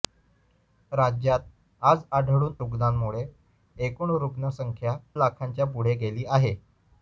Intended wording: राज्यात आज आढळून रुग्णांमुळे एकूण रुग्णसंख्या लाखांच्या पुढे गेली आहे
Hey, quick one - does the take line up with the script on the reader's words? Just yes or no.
yes